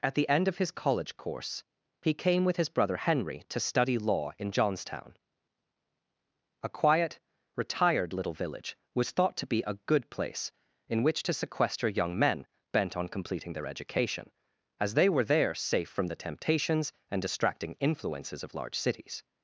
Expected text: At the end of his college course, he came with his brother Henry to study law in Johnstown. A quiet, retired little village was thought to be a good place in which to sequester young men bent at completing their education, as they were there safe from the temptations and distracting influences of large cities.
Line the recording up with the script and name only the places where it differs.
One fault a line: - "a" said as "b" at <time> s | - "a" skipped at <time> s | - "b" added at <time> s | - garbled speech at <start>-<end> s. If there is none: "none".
- "at" said as "on" at 13.0 s